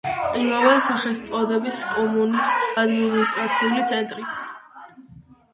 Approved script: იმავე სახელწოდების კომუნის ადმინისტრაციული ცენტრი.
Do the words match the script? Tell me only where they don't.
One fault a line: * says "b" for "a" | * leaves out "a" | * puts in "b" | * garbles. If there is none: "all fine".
all fine